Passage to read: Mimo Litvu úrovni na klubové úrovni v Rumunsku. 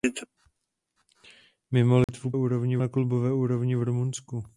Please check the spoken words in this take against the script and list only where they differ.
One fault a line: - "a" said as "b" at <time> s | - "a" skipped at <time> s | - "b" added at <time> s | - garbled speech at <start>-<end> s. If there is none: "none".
none